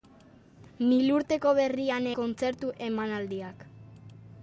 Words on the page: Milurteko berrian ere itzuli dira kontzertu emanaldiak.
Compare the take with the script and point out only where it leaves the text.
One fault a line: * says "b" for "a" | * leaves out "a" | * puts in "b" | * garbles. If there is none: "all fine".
* leaves out "ere itzuli dira"